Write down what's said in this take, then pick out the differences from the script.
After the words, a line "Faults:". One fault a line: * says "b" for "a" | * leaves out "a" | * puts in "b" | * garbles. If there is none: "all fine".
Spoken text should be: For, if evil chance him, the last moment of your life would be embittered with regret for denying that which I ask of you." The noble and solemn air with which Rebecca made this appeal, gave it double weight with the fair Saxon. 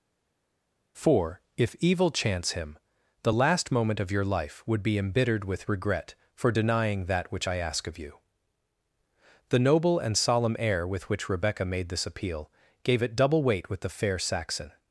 For, if evil chance him, the last moment of your life would be embittered with regret for denying that which I ask of you." The noble and solemn air with which Rebecca made this appeal, gave it double weight with the fair Saxon.
Faults:
all fine